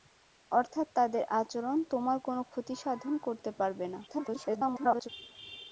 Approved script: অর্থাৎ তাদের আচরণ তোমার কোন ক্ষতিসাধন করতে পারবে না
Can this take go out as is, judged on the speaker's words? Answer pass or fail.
fail